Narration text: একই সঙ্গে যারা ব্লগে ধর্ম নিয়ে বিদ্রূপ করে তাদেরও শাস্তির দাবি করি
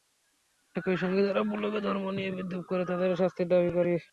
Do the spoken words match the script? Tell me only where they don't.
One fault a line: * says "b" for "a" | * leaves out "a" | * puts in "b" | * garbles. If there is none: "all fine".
all fine